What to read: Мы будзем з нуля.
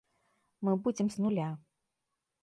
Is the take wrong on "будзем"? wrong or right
right